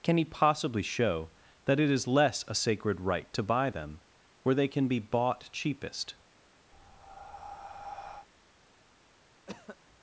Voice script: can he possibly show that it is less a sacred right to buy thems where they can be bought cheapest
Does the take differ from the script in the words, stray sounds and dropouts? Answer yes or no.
yes